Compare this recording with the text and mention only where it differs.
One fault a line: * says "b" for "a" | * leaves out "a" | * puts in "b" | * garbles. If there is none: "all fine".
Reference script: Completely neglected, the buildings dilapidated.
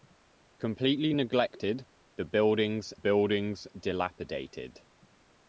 * puts in "buildings"